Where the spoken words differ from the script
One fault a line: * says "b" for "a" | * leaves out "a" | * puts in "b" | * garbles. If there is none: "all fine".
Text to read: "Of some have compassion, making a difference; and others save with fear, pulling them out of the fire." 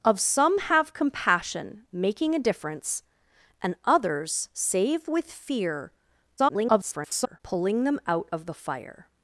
* garbles